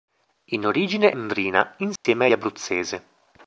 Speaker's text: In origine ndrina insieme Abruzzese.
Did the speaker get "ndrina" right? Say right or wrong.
right